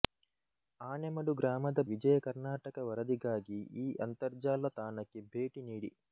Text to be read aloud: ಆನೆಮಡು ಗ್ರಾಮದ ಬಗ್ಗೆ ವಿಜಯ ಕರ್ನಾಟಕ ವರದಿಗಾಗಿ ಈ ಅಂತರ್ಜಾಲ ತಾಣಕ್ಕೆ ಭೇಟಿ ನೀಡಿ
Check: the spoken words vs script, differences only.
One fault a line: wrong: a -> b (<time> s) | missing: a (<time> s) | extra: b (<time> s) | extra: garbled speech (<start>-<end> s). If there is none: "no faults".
missing: ಬಗ್ಗೆ (1.8 s)